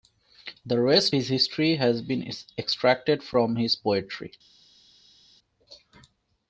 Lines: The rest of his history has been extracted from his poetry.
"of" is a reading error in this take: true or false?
true